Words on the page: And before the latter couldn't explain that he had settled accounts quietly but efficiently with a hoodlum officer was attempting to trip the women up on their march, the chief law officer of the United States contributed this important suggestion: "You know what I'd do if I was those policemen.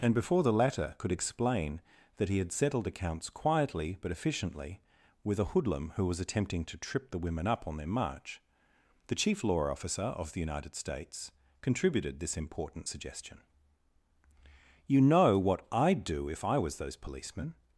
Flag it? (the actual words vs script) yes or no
yes